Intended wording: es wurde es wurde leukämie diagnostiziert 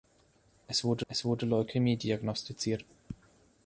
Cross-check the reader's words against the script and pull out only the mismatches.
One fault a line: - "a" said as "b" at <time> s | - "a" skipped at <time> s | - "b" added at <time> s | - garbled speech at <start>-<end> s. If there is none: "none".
none